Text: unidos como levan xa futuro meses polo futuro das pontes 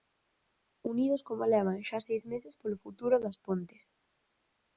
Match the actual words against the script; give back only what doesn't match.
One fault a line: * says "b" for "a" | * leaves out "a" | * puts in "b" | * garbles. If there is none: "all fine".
* says "seis" for "futuro"